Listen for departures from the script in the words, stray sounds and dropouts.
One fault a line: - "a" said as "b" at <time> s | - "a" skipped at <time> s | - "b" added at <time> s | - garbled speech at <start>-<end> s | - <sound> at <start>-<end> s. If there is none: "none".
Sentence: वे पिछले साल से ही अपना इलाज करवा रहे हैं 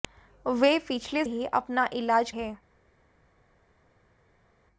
- "साल से" skipped at 1.2 s
- "करवा रहे" skipped at 2.3 s